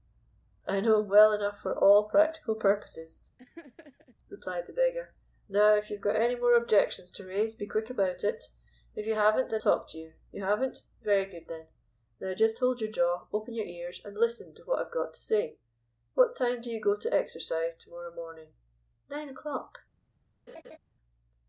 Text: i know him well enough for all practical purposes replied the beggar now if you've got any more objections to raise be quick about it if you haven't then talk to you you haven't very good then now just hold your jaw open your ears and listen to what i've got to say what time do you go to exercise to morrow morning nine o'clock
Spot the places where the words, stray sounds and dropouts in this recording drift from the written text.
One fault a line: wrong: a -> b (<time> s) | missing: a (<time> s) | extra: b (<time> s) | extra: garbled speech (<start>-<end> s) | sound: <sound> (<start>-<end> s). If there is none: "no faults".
sound: laugh (3.4-4.2 s)
sound: laugh (20.5-20.8 s)